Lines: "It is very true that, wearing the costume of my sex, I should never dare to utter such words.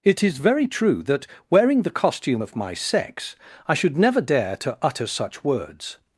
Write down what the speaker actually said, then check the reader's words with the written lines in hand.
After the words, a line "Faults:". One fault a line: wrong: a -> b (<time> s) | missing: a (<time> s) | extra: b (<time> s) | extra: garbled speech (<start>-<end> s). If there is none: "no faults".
"It is very true that, wearing the costume of my sex, I should never dare to utter such words.
Faults:
no faults